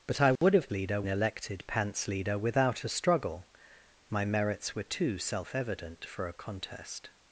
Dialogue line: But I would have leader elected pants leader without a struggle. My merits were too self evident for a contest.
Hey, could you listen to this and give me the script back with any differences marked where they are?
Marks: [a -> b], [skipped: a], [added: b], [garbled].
But I would have leader elected pants leader without a struggle. My merits were too self evident for a contest.